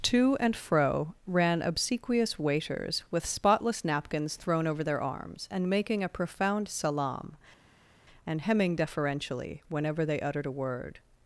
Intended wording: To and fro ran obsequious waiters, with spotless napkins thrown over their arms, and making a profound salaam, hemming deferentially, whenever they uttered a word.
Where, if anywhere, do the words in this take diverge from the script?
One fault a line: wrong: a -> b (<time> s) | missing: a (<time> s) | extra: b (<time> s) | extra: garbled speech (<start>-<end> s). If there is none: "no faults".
extra: and (8.2 s)